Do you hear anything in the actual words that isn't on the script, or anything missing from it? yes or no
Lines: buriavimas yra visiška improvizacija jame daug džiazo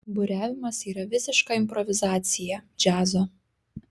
yes